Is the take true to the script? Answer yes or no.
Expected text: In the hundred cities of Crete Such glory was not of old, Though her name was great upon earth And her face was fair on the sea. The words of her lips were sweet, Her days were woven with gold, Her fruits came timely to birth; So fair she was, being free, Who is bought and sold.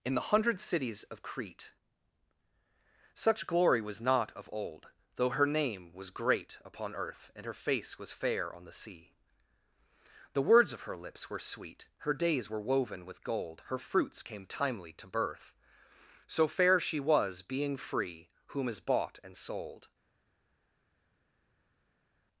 no